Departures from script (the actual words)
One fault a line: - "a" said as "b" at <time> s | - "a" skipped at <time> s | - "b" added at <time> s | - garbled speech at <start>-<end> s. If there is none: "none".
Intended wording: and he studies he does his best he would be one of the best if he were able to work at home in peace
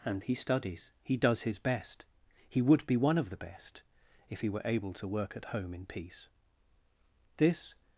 - "this" added at 7.4 s